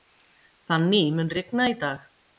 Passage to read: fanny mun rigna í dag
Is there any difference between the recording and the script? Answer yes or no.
no